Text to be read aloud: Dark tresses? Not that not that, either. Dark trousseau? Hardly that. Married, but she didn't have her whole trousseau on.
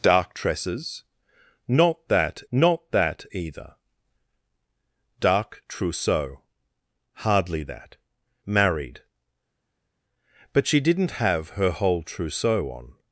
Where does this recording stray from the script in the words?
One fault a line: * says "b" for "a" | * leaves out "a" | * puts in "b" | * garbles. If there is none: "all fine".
all fine